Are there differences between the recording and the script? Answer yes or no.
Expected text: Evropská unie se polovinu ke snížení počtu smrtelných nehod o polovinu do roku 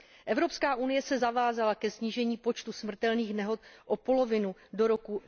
yes